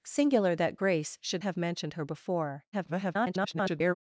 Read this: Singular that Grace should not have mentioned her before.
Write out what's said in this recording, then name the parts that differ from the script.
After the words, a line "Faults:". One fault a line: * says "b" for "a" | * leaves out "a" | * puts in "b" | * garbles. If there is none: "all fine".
Singular that Grace should have mentioned her before. [garbled]
Faults:
* leaves out "not"
* garbles